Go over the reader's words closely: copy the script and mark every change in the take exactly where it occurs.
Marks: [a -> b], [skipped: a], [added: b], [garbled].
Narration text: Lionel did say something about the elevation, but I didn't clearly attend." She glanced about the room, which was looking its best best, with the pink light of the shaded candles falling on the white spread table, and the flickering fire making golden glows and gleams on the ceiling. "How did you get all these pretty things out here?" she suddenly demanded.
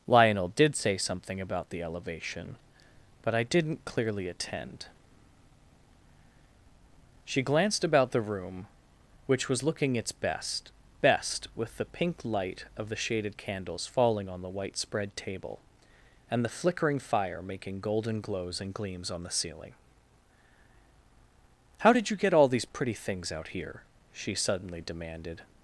Lionel did say something about the elevation, but I didn't clearly attend." She glanced about the room, which was looking its best best, with the pink light of the shaded candles falling on the white spread table, and the flickering fire making golden glows and gleams on the ceiling. "How did you get all these pretty things out here?" she suddenly demanded.